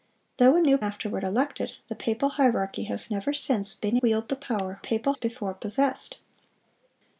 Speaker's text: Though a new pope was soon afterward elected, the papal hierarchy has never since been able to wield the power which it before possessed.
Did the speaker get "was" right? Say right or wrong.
wrong